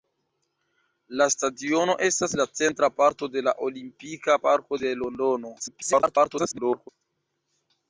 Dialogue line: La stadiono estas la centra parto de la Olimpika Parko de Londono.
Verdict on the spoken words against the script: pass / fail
fail